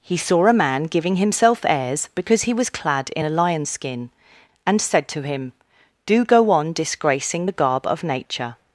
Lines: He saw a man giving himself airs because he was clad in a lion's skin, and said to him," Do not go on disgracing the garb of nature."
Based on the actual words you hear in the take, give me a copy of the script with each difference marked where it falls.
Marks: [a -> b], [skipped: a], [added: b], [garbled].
He saw a man giving himself airs because he was clad in a lion's skin, and said to him," Do [skipped: not] go on disgracing the garb of nature."